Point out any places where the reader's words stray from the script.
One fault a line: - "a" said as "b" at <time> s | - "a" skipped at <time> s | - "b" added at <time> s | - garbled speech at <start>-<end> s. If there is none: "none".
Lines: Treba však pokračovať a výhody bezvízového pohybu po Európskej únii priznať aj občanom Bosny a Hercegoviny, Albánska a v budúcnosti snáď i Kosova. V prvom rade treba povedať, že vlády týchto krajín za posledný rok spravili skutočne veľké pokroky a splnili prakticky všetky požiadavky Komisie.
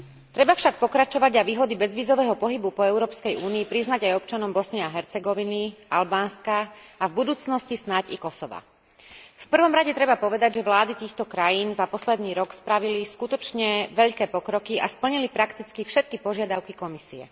none